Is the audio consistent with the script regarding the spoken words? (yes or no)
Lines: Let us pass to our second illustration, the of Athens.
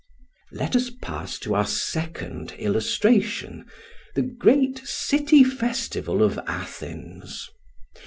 no